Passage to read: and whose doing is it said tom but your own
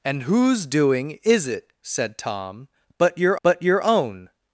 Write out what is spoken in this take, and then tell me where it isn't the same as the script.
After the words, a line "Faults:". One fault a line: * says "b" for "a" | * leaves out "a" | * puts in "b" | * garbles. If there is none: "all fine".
and whose doing is it said tom but your but your own
Faults:
* puts in "but your"